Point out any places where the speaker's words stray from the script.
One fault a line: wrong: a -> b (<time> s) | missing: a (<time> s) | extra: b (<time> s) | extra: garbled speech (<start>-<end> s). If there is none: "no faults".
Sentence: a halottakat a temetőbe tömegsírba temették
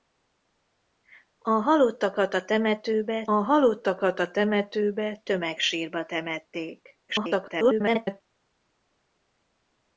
extra: halottakat a temetőbe (3.3 s)
extra: garbled speech (7.1-8.2 s)